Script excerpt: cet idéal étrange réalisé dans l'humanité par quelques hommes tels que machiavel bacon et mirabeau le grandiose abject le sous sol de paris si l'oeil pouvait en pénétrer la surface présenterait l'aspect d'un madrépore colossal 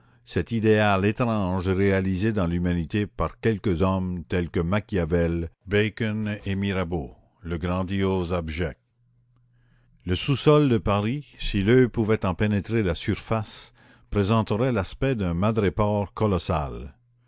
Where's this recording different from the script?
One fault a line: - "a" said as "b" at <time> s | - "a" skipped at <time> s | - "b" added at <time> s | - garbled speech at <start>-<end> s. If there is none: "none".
none